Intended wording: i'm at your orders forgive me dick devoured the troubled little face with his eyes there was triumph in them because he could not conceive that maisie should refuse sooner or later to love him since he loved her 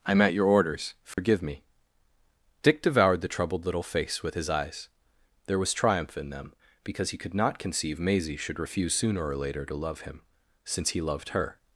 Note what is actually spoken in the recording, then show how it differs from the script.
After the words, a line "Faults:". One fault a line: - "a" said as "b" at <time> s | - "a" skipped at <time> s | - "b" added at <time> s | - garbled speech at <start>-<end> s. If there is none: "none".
i'm at your orders forgive me dick devoured the troubled little face with his eyes there was triumph in them because he could not conceive maisie should refuse sooner or later to love him since he loved her
Faults:
- "that" skipped at 8.0 s